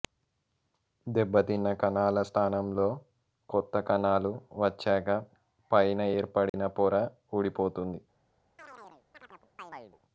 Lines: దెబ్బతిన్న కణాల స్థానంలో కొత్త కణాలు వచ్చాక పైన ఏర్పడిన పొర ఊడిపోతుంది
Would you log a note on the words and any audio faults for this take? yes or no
yes